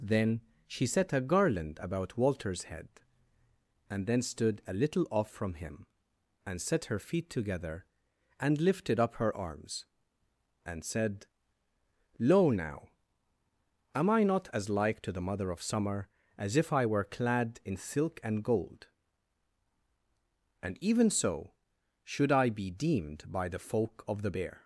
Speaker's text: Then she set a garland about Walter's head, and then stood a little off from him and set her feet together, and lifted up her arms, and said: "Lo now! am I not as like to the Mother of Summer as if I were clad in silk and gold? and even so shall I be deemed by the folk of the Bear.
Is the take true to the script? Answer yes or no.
no